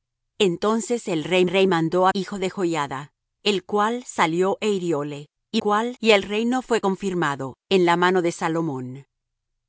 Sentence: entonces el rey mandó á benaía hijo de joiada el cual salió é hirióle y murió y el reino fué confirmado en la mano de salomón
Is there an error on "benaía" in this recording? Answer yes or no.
yes